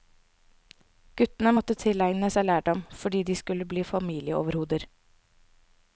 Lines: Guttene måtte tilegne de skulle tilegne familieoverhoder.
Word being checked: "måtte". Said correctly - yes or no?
yes